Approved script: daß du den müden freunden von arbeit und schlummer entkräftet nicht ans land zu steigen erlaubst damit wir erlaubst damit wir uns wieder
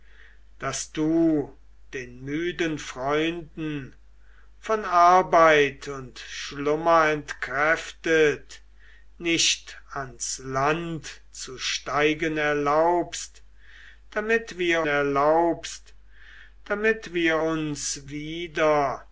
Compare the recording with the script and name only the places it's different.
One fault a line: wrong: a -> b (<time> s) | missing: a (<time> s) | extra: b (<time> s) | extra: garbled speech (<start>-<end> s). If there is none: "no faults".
no faults